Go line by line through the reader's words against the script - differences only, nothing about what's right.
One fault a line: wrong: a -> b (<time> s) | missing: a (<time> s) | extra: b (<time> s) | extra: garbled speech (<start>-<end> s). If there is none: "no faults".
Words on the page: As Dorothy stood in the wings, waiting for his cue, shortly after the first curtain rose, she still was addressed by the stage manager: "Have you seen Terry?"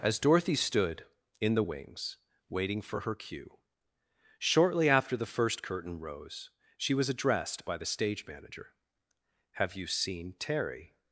wrong: his -> her (3.0 s)
missing: still (6.9 s)